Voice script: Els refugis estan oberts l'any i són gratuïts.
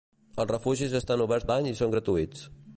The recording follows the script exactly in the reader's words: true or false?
true